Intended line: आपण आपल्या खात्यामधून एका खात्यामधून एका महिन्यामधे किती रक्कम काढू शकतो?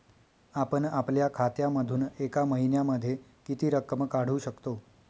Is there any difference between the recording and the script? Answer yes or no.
yes